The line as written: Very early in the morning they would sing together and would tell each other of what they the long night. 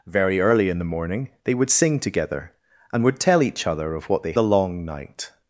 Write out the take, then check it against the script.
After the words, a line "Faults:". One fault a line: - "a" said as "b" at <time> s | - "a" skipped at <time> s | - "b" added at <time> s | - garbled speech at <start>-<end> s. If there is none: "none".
Very early in the morning they would sing together and would tell each other of what they the long night.
Faults:
none